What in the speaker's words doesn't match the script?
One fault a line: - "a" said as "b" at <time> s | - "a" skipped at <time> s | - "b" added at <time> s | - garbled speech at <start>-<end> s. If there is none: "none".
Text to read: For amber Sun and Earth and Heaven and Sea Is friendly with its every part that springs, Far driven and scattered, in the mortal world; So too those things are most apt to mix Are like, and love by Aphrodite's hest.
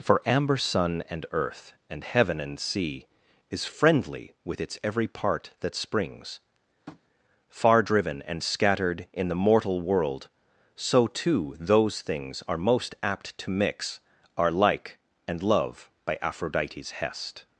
none